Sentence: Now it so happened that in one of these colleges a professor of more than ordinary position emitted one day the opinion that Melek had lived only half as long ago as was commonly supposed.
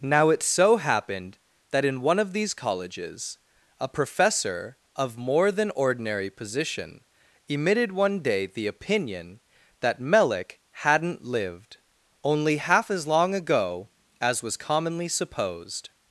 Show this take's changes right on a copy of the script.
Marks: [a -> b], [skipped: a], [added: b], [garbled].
Now it so happened that in one of these colleges a professor of more than ordinary position emitted one day the opinion that Melek [had -> hadn't] lived only half as long ago as was commonly supposed.